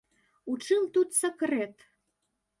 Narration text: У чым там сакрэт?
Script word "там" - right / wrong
wrong